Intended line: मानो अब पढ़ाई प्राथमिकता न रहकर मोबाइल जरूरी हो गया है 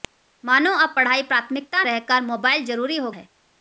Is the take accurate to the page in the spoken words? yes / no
no